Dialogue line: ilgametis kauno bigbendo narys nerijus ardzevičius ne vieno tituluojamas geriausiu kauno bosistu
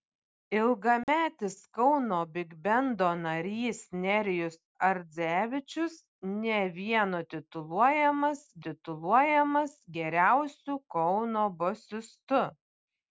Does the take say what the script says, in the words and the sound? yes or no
no